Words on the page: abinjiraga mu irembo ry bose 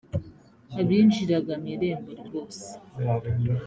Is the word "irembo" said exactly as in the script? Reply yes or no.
yes